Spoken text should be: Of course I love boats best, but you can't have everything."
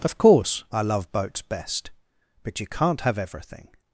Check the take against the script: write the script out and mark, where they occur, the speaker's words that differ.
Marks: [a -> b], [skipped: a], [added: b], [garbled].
Of course I love boats best, but you can't have everything."